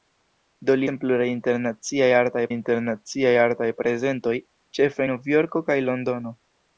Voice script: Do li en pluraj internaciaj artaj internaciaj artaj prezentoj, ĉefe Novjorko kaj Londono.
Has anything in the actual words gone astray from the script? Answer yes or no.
no